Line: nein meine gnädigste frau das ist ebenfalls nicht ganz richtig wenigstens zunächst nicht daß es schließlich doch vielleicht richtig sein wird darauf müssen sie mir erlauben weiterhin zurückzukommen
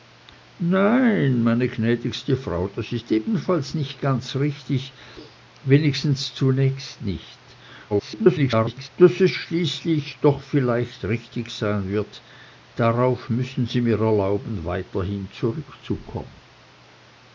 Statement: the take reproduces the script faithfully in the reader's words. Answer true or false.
false